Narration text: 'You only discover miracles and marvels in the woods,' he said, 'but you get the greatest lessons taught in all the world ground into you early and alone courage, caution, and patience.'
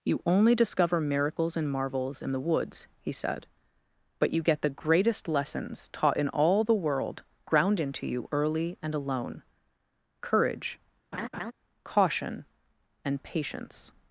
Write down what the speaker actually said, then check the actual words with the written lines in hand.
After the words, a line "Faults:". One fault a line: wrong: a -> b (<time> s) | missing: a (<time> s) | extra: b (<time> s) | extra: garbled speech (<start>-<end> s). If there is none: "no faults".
'You only discover miracles and marvels in the woods,' he said, 'but you get the greatest lessons taught in all the world ground into you early and alone courage, caution, and patience.'
Faults:
no faults